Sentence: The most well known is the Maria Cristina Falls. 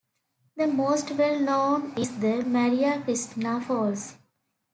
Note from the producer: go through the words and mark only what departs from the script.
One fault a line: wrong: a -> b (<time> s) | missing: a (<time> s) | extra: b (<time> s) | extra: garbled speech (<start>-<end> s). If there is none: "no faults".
no faults